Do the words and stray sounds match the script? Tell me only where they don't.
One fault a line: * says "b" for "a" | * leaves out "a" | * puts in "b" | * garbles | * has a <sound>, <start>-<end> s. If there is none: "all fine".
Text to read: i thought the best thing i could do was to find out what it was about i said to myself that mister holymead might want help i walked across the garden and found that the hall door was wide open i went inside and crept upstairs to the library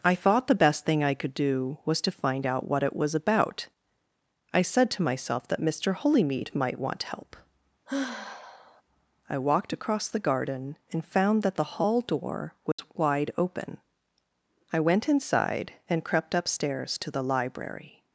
* has a sigh, 7.9-8.8 s
* has a dropout, 12.7-12.8 s